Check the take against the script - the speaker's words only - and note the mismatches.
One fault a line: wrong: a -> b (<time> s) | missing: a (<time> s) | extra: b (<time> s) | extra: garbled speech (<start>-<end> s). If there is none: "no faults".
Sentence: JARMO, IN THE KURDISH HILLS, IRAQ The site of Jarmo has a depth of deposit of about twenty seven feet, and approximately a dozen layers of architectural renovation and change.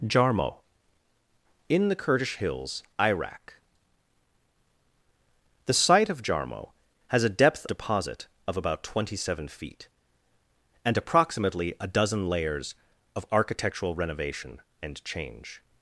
missing: of (7.7 s)